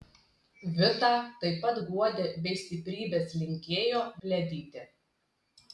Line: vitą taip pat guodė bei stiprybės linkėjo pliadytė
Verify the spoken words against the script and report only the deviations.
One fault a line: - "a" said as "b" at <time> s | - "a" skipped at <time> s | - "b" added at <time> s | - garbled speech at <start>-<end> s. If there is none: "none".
none